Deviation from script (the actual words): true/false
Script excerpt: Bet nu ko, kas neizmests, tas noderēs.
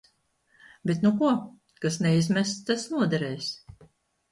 false